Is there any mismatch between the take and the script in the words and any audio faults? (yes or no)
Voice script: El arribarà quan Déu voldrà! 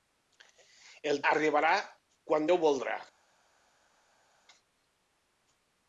no